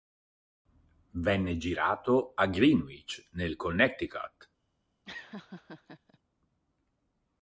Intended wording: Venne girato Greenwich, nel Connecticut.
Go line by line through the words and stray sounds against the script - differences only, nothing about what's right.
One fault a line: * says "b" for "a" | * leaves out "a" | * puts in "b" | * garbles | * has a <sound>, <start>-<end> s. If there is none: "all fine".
* puts in "a"
* has a laugh, 5.1-6.2 s